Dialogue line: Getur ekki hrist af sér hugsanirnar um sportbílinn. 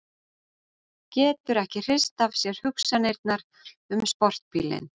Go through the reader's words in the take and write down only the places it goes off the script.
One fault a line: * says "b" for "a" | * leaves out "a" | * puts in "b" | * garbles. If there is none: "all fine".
all fine